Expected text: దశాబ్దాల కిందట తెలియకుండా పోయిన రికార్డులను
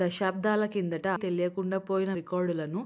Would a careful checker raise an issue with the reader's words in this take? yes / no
no